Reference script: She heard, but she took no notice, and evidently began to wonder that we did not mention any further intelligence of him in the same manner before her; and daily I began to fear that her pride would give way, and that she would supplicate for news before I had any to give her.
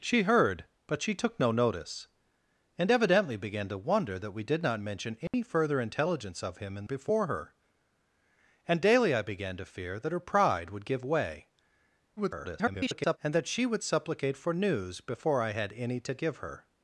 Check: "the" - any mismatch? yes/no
yes